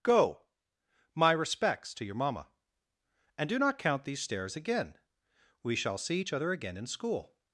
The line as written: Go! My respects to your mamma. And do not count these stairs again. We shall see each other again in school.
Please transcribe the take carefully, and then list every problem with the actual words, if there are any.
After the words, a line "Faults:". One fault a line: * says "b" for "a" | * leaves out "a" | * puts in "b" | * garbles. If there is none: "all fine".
Go! My respects to your mamma. And do not count these stairs again. We shall see each other again in school.
Faults:
all fine